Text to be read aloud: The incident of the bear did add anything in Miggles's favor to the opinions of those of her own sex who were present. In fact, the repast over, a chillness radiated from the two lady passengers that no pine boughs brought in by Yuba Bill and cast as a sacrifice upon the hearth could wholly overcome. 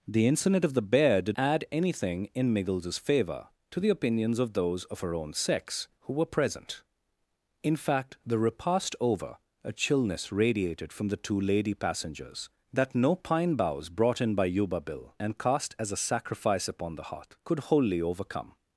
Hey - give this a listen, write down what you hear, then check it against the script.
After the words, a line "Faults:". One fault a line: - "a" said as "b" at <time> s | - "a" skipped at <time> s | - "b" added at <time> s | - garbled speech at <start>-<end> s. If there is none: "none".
The incident of the bear did add anything in Miggles's favor to the opinions of those of her own sex who were present. In fact, the repast over, a chillness radiated from the two lady passengers that no pine boughs brought in by Yuba Bill and cast as a sacrifice upon the hearth could wholly overcome.
Faults:
none